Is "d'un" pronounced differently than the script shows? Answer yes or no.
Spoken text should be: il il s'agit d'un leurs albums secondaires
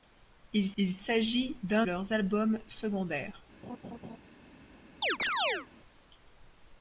no